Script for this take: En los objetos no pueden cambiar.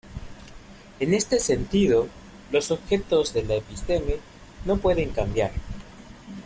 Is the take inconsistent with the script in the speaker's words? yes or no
yes